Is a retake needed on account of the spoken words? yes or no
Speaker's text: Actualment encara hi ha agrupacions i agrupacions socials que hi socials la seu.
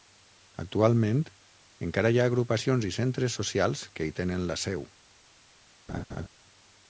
yes